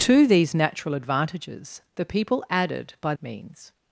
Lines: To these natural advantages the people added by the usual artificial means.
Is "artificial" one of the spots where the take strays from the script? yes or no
yes